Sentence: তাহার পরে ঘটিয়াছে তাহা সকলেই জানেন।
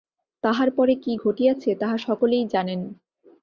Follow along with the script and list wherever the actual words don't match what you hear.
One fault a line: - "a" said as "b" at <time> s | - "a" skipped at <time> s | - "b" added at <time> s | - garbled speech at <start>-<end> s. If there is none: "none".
- "কী" added at 0.9 s